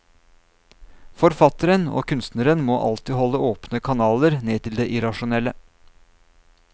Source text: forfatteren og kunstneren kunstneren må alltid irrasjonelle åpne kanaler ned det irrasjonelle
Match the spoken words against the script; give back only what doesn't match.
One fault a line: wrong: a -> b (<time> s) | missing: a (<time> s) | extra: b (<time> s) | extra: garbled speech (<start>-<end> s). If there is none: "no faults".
missing: kunstneren (2.6 s)
wrong: irrasjonelle -> holde (3.2 s)
extra: til (4.7 s)